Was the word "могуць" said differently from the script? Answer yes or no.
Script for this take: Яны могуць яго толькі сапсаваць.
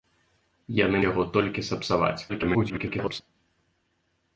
yes